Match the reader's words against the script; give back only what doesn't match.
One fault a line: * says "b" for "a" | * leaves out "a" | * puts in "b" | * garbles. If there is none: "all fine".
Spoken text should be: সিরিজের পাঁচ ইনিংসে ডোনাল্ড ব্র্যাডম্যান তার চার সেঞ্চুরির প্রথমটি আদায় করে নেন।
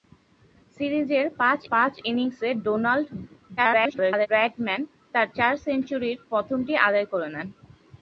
* puts in "পাঁচ"
* garbles